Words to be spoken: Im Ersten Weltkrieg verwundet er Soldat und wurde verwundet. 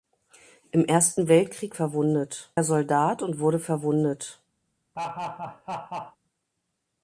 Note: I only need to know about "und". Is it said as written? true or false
true